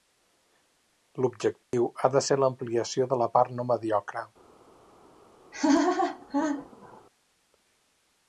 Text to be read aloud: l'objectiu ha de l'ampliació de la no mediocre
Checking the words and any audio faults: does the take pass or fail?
fail